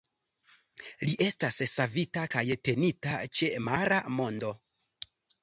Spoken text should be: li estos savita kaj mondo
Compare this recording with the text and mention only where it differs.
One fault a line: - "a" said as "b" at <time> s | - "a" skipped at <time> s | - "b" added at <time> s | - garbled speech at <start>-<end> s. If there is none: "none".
- "estos" said as "estas" at 1.2 s
- "tenita ĉe mara" added at 2.7 s